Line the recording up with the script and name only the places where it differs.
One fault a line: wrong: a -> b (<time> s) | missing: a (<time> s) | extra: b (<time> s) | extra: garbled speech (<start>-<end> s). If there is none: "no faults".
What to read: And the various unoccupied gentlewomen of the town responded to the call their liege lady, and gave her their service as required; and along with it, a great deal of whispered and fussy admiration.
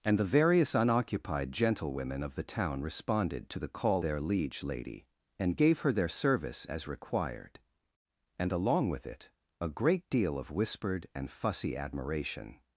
no faults